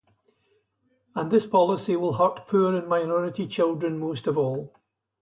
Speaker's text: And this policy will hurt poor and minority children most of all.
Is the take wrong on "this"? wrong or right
right